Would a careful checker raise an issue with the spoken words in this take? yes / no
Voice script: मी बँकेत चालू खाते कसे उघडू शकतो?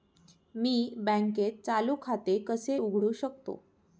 no